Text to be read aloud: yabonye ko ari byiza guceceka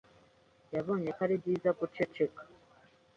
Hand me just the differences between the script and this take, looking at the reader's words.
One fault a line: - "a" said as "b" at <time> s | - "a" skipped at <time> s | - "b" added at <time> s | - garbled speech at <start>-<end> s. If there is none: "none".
none